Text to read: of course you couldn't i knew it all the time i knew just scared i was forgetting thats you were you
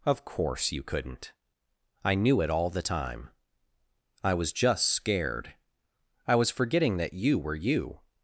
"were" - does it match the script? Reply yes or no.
yes